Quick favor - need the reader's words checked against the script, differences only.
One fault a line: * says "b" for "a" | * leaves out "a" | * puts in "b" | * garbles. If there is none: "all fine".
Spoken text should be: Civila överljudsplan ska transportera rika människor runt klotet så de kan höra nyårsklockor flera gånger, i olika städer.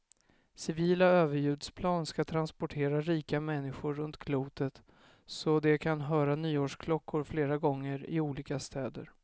all fine